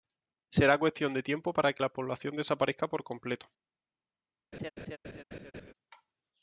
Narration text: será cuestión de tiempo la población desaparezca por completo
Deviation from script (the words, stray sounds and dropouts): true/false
true